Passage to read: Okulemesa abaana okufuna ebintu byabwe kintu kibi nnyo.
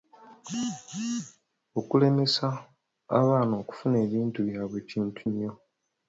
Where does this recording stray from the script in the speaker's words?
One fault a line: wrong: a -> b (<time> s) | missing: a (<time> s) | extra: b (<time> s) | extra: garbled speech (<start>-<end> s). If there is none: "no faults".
missing: kibi (5.2 s)